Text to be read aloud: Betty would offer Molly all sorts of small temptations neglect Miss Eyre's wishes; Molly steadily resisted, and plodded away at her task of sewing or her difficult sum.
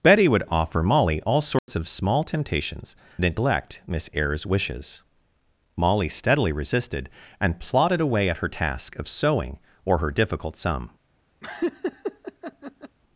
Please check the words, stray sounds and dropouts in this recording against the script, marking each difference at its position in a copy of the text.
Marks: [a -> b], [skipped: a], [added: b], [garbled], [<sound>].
Betty would offer Molly all sorts [dropout] of small temptations neglect Miss Eyre's wishes; Molly steadily resisted, and plodded away at her task of sewing or her difficult sum. [laugh]